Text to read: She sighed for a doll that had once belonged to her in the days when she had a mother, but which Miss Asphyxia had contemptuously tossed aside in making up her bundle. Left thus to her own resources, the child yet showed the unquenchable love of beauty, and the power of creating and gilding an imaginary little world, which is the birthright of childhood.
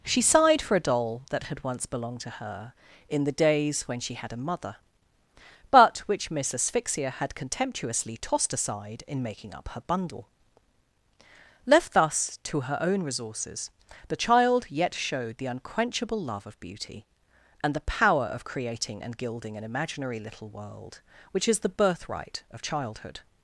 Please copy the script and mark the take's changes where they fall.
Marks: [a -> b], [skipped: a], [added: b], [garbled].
She sighed for a doll that had once belonged to her in the days when she had a mother, but which Miss Asphyxia had contemptuously tossed aside in making up her bundle. Left thus to her own resources, the child yet showed the unquenchable love of beauty, and the power of creating and gilding an imaginary little world, which is the birthright of childhood.